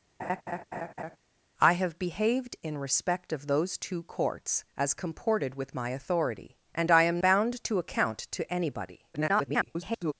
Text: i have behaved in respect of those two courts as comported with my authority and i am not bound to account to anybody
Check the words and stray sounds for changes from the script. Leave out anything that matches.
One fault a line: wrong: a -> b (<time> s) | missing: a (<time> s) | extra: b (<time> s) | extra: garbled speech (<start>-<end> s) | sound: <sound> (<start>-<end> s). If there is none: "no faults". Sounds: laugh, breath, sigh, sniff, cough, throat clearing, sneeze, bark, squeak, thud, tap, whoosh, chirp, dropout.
sound: laugh (0.2-1.2 s)
missing: not (7.2 s)
extra: garbled speech (9.1-10.1 s)